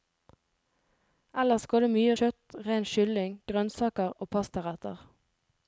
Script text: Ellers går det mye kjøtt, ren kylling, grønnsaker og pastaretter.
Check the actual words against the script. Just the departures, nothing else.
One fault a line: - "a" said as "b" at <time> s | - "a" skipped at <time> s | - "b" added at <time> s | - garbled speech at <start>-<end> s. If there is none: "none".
none